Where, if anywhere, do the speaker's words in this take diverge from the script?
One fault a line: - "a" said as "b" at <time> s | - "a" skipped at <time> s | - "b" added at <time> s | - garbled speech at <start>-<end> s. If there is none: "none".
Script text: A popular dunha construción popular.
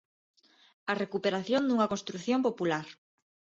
- "popular" said as "recuperación" at 1.0 s